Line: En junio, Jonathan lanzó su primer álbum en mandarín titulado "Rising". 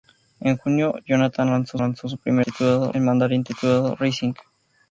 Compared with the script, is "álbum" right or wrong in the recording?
wrong